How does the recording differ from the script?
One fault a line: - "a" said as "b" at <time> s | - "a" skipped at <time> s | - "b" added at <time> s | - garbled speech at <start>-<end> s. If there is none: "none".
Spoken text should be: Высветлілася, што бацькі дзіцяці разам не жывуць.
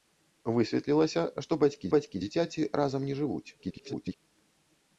- "бацькі" added at 2.0 s
- garbled speech at 3.6-4.2 s